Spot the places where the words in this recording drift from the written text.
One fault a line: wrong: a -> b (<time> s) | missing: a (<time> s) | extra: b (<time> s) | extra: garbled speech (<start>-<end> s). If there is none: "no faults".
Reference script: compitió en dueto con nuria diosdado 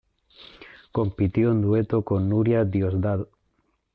no faults